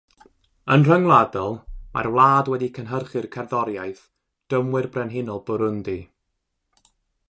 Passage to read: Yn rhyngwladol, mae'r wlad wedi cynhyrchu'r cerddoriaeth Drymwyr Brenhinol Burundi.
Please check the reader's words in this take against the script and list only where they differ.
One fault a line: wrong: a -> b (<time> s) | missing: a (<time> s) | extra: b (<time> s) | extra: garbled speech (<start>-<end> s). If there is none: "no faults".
no faults